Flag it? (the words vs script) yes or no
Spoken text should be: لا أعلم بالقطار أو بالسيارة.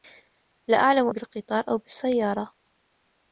no